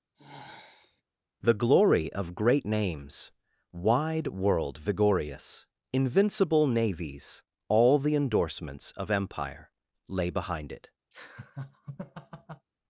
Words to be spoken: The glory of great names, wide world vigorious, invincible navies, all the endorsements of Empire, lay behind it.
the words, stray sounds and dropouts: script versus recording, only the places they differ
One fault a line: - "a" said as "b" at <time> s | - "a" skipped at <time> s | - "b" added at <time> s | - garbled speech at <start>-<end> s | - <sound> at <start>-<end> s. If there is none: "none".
- sigh at 0.1-1.0 s
- laugh at 11.1-12.7 s